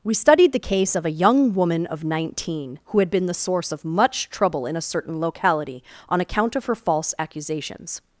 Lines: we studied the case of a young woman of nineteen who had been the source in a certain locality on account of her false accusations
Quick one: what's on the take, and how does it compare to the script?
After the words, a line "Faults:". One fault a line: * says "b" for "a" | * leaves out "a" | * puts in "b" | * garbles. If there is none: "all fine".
we studied the case of a young woman of nineteen who had been the source of much trouble in a certain locality on account of her false accusations
Faults:
* puts in "of much trouble"